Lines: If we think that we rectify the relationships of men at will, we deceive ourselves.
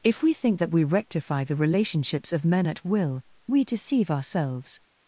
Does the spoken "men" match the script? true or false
true